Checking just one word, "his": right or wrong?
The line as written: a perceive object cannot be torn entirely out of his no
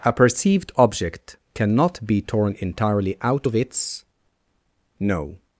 wrong